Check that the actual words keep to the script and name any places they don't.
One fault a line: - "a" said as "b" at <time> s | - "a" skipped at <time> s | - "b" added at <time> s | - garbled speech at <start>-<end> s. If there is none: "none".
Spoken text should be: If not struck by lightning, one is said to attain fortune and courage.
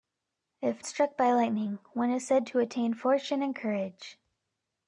- "not" skipped at 0.8 s